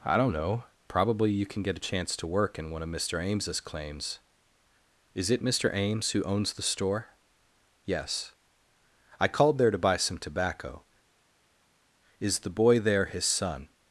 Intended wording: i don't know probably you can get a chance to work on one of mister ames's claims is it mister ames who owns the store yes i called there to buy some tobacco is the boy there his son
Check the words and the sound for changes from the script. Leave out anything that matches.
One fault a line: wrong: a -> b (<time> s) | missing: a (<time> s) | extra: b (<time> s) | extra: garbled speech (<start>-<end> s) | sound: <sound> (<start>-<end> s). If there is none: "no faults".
wrong: on -> in (2.6 s)